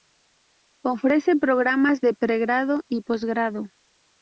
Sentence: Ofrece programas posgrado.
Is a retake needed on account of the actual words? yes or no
yes